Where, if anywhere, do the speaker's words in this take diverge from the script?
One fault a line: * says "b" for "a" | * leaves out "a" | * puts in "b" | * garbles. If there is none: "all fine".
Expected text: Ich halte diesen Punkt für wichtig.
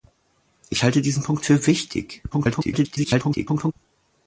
* garbles